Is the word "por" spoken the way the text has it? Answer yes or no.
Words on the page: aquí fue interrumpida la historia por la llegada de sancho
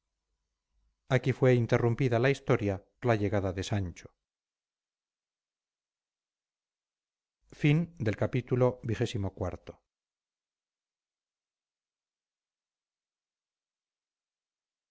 no